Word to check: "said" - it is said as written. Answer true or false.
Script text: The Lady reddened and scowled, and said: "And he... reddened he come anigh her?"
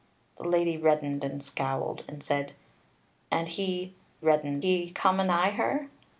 true